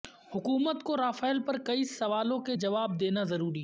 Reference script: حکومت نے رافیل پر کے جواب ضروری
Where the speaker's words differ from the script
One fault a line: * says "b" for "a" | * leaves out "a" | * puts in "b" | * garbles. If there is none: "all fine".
* says "کو" for "نے"
* puts in "کئی سوالوں"
* puts in "دینا"